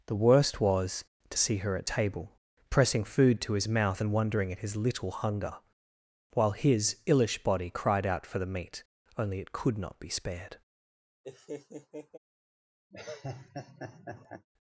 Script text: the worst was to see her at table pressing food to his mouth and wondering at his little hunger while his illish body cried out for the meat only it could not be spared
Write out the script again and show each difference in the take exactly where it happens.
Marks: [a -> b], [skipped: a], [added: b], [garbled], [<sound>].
the worst was to see her at table pressing food to his mouth and wondering at his little hunger while his illish body cried out for the meat only it could not be spared [laugh] [laugh]